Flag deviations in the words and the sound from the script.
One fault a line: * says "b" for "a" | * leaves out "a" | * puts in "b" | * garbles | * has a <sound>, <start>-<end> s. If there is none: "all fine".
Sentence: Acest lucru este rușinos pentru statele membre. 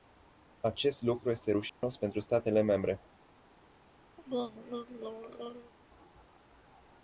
* has a dropout, 1.7-1.8 s
* has a throat clearing, 4.2-5.7 s